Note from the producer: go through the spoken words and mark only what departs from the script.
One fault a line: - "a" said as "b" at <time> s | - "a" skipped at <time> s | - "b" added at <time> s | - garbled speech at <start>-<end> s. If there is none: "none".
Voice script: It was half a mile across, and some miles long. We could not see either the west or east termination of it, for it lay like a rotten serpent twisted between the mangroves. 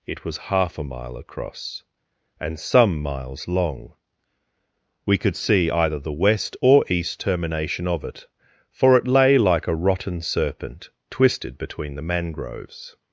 - "not" skipped at 5.3 s